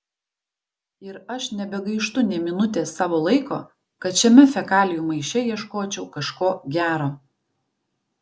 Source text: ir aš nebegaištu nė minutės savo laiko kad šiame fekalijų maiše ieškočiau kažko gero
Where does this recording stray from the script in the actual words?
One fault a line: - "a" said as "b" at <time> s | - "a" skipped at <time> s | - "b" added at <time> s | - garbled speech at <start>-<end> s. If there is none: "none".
none